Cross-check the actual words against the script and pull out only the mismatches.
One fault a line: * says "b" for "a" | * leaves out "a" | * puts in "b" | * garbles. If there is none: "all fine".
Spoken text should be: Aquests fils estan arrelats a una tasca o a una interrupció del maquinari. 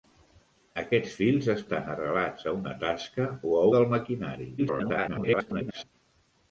* leaves out "una interrupció"
* garbles